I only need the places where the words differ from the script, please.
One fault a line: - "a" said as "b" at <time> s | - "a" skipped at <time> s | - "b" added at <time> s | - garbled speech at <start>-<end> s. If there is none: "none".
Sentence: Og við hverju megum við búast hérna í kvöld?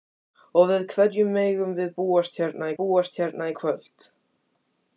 - "búast hérna" added at 2.8 s